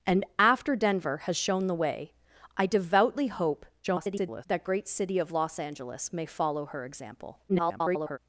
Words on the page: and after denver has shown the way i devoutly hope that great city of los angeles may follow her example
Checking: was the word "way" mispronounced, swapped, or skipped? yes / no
no